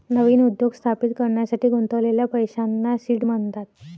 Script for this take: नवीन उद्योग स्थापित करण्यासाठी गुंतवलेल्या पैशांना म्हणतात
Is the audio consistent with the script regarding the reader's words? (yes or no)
no